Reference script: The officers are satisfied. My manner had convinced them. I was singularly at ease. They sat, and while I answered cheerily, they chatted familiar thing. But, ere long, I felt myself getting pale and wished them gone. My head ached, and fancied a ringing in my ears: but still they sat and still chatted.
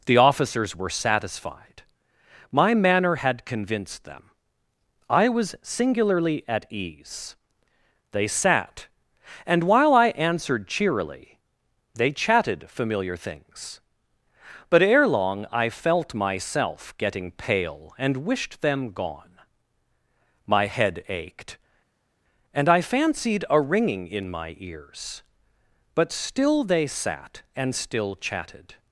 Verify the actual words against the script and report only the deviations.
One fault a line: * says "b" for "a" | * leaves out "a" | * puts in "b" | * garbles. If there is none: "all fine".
* says "were" for "are"
* says "things" for "thing"
* puts in "I"